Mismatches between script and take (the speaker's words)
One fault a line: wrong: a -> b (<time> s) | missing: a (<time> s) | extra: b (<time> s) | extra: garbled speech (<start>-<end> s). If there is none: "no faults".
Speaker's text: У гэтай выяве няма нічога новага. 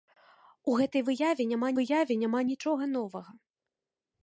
extra: выяве няма (1.8 s)